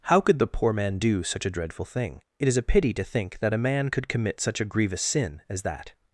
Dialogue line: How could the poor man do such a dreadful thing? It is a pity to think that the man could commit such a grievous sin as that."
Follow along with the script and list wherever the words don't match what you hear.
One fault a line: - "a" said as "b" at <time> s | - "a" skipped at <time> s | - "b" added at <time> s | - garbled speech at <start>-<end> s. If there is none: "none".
- "the" said as "a" at 3.5 s